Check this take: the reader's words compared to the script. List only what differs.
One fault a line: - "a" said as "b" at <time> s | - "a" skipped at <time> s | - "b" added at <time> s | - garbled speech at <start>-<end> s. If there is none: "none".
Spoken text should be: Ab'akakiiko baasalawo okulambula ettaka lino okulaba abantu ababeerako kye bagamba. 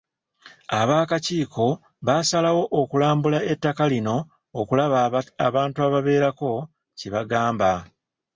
none